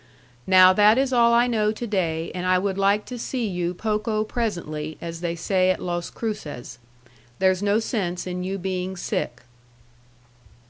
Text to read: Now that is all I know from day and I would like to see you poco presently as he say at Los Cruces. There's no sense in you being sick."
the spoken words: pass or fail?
fail